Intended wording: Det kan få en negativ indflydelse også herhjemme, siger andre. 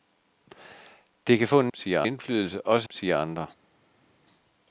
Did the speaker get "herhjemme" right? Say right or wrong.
wrong